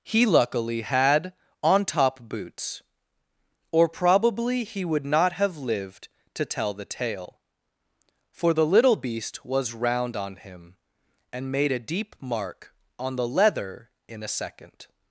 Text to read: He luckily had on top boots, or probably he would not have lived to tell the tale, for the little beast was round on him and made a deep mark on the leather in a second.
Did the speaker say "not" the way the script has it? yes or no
yes